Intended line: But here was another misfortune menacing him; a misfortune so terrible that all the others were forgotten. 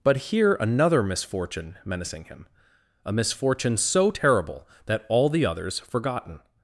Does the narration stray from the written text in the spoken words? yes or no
yes